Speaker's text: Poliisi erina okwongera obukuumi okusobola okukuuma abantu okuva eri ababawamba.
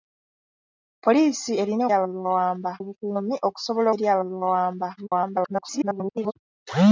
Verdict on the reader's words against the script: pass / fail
fail